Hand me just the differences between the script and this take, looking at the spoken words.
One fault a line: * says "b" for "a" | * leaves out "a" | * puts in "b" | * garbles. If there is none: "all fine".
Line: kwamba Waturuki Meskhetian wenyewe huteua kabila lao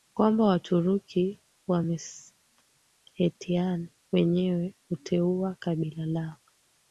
* puts in "wa"